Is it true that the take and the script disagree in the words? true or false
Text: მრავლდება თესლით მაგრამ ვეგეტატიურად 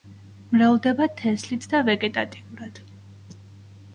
true